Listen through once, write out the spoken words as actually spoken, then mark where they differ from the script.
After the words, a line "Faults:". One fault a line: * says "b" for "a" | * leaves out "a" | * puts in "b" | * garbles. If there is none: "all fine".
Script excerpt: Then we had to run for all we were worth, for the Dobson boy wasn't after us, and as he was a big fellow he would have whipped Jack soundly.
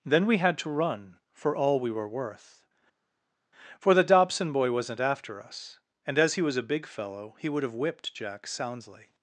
Then we had to run for all we were worth, for the Dobson boy wasn't after us, and as he was a big fellow he would have whipped Jack soundly.
Faults:
all fine